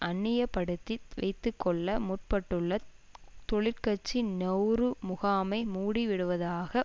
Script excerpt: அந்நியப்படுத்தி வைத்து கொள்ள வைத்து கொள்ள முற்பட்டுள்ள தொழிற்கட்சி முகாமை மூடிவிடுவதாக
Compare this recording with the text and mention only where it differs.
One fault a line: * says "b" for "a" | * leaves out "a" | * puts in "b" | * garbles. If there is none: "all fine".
* leaves out "வைத்து கொள்ள"
* puts in "நெளரு"